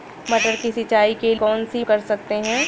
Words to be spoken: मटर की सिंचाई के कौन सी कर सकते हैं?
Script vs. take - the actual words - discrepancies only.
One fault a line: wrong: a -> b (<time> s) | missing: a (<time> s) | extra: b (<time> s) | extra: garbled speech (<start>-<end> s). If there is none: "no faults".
no faults